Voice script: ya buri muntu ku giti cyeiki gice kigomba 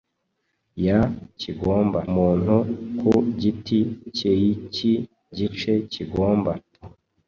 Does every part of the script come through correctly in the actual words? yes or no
no